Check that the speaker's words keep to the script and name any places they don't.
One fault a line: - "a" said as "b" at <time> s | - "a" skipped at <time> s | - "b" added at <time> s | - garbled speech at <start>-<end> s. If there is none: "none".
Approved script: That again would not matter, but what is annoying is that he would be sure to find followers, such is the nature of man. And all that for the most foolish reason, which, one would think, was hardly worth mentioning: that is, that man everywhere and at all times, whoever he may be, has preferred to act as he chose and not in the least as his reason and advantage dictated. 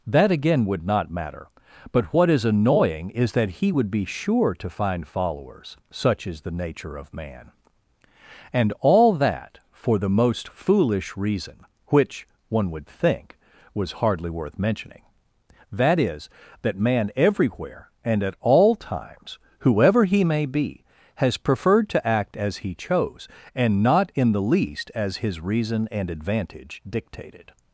none